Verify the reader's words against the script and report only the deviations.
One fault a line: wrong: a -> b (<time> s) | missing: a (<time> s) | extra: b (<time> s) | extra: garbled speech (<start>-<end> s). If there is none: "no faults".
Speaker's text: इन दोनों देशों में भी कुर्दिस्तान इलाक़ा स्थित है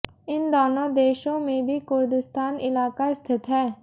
no faults